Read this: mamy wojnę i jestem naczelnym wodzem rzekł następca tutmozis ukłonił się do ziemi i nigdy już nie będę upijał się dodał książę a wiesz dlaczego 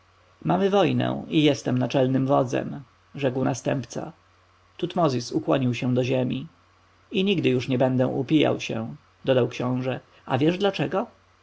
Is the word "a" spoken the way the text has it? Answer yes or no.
yes